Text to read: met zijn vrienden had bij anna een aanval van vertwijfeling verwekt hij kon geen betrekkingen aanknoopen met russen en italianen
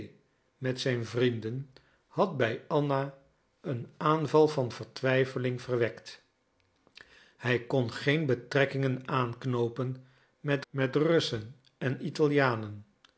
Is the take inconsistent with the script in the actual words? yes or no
yes